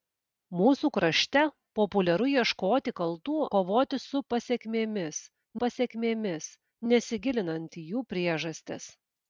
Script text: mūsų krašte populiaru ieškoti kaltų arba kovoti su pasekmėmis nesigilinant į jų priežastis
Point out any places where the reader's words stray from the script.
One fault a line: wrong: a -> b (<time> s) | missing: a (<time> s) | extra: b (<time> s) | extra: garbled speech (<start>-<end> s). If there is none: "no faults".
missing: arba (3.4 s)
extra: pasekmėmis (5.6 s)